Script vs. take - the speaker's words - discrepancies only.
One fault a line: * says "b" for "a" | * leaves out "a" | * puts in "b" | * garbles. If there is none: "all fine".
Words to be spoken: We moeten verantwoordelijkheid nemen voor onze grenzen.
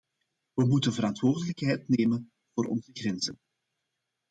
all fine